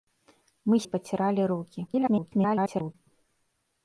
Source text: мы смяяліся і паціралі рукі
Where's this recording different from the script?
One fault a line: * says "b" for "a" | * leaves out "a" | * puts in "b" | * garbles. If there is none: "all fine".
* leaves out "смяяліся"
* garbles